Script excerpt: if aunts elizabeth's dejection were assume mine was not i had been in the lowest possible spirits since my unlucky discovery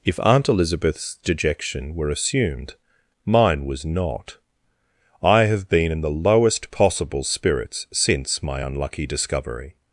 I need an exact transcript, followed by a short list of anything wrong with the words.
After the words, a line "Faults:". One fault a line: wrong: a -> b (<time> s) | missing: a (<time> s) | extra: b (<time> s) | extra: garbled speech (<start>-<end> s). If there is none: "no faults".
if aunt elizabeth's dejection were assumed mine was not i have been in the lowest possible spirits since my unlucky discovery
Faults:
wrong: aunts -> aunt (0.2 s)
wrong: assume -> assumed (2.1 s)
wrong: had -> have (5.4 s)